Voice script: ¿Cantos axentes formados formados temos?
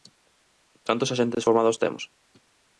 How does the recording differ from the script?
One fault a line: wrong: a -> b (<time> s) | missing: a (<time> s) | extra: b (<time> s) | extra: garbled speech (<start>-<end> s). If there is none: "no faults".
missing: formados (1.8 s)